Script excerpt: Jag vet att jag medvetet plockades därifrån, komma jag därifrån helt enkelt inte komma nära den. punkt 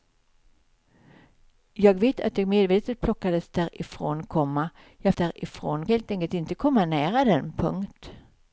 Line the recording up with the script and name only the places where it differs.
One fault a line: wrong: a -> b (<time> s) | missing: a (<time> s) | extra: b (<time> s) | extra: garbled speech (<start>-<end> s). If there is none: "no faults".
no faults